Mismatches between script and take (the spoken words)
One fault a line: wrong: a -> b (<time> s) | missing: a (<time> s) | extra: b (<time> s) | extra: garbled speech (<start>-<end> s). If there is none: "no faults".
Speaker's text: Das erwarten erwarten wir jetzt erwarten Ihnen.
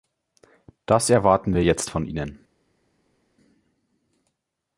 missing: erwarten (1.5 s)
wrong: erwarten -> von (1.9 s)